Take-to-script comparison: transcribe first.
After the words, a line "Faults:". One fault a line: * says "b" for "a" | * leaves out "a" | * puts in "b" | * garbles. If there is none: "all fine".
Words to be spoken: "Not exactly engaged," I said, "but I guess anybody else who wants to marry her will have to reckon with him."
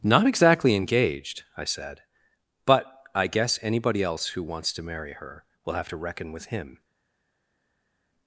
"Not exactly engaged," I said, "but I guess anybody else who wants to marry her will have to reckon with him."
Faults:
all fine